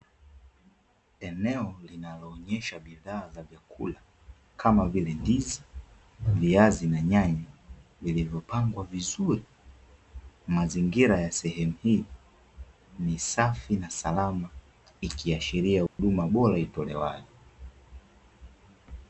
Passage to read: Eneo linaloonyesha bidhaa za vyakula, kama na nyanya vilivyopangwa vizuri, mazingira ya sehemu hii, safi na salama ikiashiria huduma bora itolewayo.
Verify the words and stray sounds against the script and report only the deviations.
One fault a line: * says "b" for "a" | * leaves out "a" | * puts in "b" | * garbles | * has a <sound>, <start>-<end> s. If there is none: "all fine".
* puts in "vile ndizi viazi"
* puts in "ni"
* has a dropout, 15.9-16.0 s